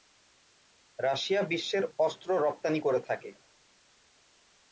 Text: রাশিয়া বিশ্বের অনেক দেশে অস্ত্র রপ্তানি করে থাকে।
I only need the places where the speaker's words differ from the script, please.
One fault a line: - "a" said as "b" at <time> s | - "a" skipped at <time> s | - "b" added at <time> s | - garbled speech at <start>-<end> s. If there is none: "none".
- "অনেক দেশে" skipped at 1.8 s